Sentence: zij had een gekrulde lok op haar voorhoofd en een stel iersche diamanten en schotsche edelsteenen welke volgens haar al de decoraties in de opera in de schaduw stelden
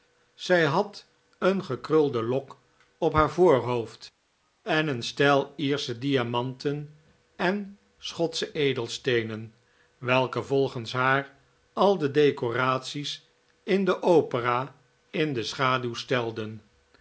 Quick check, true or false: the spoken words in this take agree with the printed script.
true